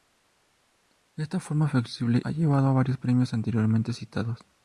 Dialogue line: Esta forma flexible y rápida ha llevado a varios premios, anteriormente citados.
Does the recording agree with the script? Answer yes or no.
no